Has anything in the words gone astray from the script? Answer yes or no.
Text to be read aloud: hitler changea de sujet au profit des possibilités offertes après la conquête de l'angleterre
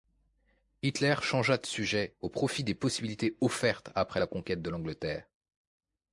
no